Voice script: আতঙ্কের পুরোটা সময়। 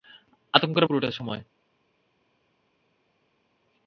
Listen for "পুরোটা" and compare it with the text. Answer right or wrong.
right